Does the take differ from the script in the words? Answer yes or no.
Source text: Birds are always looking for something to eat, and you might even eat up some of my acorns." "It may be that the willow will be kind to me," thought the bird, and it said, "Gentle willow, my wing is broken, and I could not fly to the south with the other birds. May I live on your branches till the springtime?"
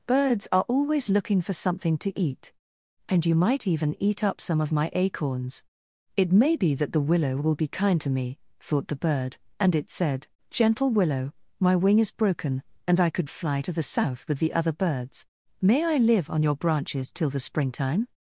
yes